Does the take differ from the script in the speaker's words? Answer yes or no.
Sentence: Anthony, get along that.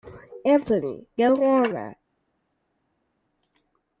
no